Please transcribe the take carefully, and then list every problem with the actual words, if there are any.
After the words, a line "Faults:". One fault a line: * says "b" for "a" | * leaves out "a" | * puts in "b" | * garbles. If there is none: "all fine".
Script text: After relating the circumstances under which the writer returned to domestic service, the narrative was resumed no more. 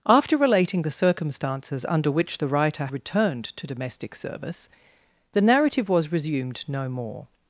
After relating the circumstances under which the writer returned to domestic service, the narrative was resumed no more.
Faults:
all fine